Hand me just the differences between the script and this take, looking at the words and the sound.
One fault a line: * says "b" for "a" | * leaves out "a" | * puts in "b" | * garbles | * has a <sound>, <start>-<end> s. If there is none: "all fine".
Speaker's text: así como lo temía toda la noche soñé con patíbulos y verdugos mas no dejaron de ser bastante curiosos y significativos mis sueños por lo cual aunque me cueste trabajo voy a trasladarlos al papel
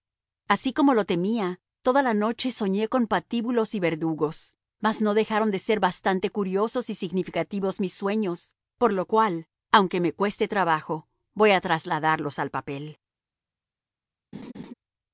* has a laugh, 14.3-14.7 s